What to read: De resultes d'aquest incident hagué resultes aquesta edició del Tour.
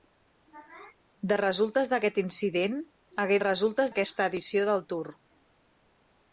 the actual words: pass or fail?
pass